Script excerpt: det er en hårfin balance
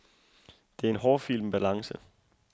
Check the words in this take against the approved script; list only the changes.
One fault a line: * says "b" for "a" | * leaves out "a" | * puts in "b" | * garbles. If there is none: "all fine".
all fine